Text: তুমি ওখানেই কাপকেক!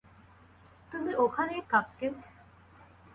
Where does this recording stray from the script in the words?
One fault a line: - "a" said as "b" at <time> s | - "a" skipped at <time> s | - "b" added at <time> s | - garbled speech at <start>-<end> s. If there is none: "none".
none